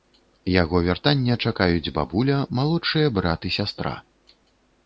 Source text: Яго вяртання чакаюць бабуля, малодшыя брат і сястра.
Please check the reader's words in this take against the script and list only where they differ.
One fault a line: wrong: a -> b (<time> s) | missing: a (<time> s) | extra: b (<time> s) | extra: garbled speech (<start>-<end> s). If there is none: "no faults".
no faults